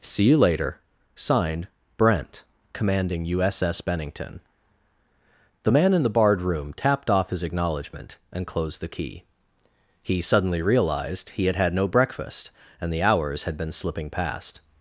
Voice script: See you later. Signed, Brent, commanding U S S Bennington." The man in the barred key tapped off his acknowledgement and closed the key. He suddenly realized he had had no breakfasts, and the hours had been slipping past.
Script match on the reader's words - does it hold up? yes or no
no